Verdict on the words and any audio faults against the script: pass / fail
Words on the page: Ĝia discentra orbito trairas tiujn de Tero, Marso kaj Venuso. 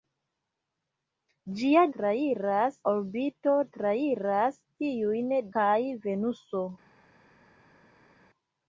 fail